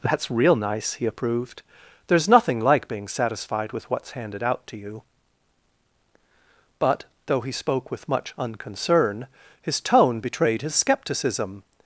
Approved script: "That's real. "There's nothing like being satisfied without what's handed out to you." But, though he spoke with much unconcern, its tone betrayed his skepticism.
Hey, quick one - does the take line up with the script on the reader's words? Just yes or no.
no